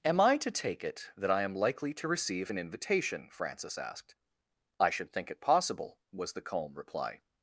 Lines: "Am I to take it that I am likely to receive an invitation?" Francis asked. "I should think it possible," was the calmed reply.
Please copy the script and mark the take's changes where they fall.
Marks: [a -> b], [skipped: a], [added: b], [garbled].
"Am I to take it that I am likely to receive an invitation?" Francis asked. "I should think it possible," was the [calmed -> calm] reply.